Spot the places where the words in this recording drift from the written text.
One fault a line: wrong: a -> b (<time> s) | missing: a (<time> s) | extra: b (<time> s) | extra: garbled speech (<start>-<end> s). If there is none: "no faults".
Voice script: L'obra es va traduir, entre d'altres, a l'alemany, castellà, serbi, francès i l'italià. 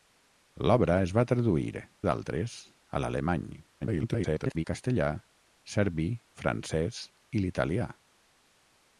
missing: entre (1.8 s)
extra: garbled speech (3.8-4.6 s)